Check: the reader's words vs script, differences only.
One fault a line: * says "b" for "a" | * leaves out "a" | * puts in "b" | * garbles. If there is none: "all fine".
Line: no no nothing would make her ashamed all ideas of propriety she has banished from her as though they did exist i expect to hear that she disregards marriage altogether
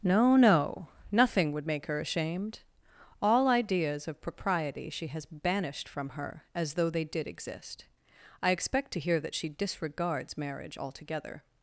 all fine